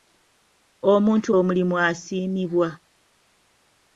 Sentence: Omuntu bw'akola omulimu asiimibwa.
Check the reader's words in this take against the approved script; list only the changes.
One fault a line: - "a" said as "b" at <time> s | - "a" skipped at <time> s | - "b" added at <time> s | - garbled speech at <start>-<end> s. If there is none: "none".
- "bw'akola" skipped at 1.3 s